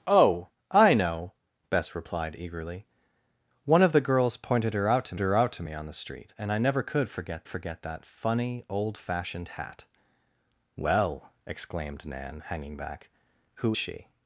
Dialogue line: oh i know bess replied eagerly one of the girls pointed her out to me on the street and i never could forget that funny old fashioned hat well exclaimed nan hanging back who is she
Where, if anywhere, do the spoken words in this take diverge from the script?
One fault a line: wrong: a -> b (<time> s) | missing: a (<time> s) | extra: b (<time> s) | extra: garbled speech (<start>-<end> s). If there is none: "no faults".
extra: her out to (5.2 s)
extra: forget (7.4 s)
missing: is (13.7 s)